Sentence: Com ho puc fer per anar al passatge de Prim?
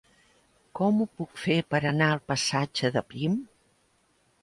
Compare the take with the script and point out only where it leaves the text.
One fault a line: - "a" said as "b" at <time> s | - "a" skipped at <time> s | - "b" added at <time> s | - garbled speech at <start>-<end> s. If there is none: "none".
none